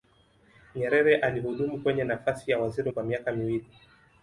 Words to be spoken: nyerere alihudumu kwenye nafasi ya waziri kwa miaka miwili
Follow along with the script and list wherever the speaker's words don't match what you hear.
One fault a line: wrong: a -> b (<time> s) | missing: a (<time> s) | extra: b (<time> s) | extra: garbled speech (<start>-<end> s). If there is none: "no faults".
no faults